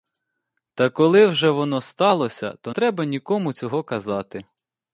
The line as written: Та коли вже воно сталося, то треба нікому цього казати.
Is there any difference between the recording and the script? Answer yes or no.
no